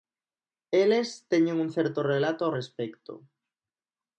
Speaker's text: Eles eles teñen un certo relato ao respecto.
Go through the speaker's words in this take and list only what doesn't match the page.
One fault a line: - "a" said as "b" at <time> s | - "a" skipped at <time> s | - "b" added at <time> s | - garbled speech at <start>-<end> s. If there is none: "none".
- "eles" skipped at 1.3 s